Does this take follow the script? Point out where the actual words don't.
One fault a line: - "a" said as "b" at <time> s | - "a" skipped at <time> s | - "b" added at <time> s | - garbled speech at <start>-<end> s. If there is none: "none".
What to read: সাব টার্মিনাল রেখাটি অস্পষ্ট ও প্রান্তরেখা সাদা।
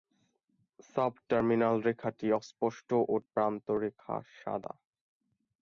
none